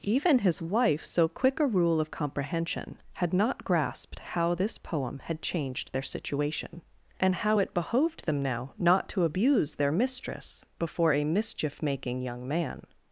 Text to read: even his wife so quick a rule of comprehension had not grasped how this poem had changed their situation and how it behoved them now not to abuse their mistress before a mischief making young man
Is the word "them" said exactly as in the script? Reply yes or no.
yes